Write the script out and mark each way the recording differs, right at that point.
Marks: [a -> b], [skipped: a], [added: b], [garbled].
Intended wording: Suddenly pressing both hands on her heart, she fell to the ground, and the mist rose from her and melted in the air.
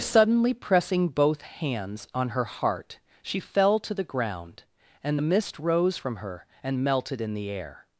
Suddenly pressing both hands on her heart, she fell to the ground, and the mist rose from her and melted in the air.